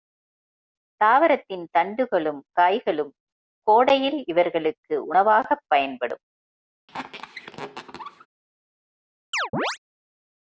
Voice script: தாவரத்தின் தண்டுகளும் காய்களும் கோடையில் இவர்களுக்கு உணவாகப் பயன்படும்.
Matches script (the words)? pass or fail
pass